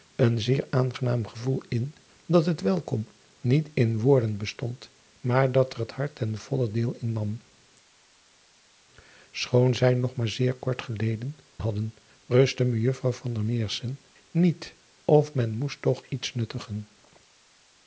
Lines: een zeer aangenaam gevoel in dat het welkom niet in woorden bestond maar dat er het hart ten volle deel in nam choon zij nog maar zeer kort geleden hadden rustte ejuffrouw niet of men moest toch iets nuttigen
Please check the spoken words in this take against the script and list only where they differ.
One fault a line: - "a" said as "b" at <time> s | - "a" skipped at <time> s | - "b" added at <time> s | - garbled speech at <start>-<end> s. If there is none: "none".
none